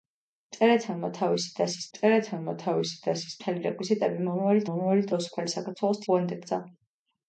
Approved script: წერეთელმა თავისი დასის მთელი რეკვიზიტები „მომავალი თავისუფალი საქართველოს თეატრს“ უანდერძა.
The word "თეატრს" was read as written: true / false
false